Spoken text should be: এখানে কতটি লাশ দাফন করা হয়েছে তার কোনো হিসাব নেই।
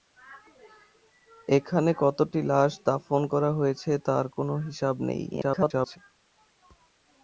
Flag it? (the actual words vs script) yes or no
yes